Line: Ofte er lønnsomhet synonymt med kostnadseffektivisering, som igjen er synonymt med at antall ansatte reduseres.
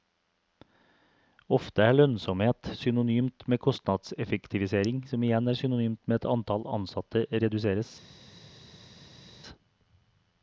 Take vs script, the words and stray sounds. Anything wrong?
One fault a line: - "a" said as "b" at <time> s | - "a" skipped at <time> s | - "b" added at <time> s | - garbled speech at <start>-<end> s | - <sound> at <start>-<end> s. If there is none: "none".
none